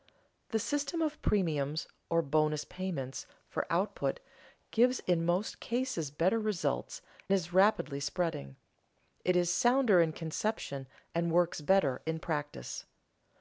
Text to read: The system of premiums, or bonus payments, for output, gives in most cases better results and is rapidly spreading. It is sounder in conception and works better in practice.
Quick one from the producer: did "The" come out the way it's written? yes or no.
yes